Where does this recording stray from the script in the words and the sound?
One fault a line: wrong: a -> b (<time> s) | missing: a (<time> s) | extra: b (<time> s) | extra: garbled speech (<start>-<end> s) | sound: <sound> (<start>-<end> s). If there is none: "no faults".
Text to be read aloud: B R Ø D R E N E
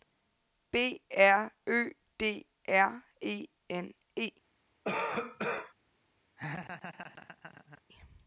sound: cough (4.8-5.7 s)
sound: laugh (6.4-7.8 s)